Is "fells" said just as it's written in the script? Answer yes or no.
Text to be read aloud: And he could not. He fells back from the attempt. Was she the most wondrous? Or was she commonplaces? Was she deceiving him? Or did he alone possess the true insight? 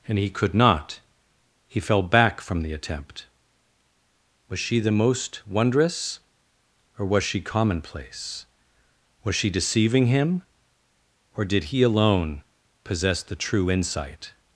no